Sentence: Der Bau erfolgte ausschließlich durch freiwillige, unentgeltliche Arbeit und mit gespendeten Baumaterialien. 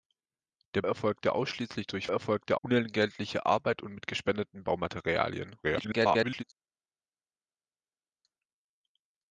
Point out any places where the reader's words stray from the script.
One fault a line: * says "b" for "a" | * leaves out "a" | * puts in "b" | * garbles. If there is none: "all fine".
* leaves out "Bau"
* says "erfolgte" for "freiwillige"
* garbles